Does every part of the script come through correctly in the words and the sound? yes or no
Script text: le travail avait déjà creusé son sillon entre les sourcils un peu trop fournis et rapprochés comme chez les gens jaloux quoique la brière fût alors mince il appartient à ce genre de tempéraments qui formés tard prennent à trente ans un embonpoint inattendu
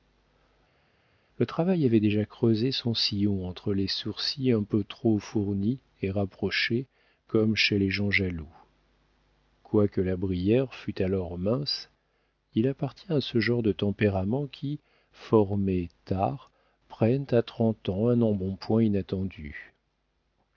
yes